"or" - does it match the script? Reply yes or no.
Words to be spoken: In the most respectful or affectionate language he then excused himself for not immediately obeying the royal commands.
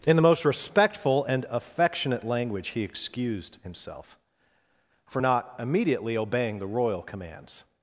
no